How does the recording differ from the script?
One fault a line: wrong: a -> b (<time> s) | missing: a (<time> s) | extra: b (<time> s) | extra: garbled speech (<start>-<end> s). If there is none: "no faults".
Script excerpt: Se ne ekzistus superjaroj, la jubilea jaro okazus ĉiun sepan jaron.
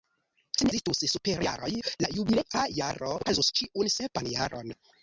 no faults